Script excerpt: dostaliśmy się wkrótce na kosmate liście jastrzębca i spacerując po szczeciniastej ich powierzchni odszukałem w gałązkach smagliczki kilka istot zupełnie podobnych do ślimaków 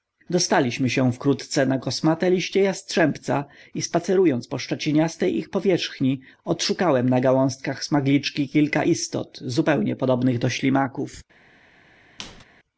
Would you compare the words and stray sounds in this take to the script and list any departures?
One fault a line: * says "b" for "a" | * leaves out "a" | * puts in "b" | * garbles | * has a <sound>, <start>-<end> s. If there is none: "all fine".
* says "na" for "w"
* has a squeak, 12.2-12.4 s